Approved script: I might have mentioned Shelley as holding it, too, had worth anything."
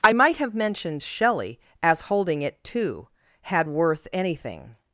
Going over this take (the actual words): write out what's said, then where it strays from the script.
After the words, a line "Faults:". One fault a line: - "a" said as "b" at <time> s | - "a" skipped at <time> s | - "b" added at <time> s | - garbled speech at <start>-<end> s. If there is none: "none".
I might have mentioned Shelley as holding it, too, had worth anything."
Faults:
none